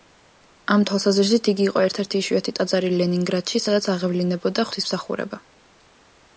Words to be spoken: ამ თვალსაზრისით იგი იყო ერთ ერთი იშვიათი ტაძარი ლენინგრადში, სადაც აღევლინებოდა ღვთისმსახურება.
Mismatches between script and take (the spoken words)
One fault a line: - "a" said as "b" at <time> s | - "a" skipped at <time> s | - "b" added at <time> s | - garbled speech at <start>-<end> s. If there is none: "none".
none